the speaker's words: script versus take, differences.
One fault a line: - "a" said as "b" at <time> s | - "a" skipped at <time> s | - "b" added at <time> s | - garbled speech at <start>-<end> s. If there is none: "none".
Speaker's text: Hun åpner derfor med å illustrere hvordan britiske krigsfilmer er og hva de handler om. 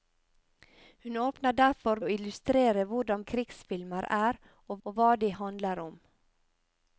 - "med" skipped at 2.0 s
- "britiske" skipped at 3.2 s
- "og" added at 4.8 s